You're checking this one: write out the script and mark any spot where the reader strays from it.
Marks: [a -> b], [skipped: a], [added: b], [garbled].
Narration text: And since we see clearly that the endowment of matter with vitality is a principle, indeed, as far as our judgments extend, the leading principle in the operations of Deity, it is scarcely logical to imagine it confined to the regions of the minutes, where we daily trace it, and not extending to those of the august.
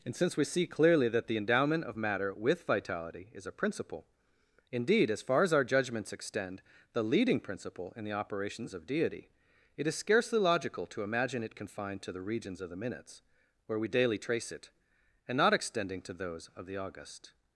And since we see clearly that the endowment of matter with vitality is a principle, indeed, as far as our judgments extend, the leading principle in the operations of Deity, it is scarcely logical to imagine it confined to the regions of the minutes, where we daily trace it, and not extending to those of the august.